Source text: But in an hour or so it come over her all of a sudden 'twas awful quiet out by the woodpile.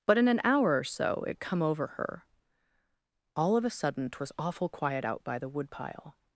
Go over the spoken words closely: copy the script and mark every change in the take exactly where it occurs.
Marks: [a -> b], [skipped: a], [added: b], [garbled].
But in an hour or so it come over her all of a sudden 'twas awful quiet out by the woodpile.